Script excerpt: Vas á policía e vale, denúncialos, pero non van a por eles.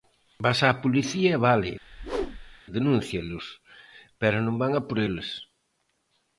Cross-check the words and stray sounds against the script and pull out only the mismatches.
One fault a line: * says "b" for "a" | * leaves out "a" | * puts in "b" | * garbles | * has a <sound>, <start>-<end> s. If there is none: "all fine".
* has a whoosh, 1.8-2.6 s